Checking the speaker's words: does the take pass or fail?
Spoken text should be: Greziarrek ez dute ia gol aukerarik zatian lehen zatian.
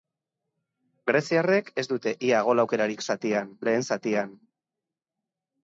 pass